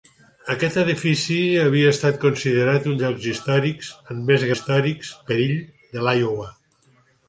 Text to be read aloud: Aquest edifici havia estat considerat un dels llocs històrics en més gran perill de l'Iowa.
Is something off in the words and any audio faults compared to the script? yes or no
yes